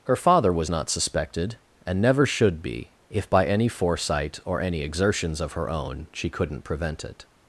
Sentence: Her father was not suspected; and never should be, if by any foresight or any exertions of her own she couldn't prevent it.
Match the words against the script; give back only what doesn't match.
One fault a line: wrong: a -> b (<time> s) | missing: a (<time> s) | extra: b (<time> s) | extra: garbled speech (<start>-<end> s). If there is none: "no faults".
no faults